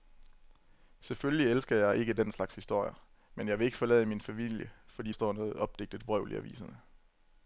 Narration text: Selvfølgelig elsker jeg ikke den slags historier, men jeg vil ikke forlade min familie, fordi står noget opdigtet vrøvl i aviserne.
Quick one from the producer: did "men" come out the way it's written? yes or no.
yes